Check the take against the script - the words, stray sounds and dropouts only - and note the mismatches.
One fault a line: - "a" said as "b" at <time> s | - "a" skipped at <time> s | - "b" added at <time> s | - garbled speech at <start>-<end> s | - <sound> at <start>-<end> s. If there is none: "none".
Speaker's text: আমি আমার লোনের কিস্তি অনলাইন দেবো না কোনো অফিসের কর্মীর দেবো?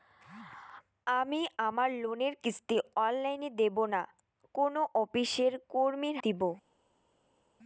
none